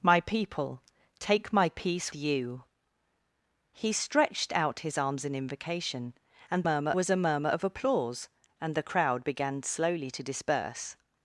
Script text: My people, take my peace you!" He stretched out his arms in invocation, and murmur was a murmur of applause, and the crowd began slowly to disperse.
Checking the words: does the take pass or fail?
pass